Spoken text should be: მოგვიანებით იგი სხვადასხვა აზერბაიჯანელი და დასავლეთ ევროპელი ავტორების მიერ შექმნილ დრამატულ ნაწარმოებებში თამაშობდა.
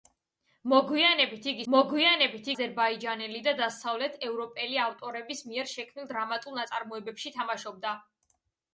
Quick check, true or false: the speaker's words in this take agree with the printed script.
false